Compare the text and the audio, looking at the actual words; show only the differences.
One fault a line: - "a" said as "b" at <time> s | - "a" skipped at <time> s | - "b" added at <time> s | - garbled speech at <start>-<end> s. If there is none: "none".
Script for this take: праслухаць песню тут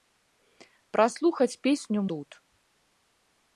none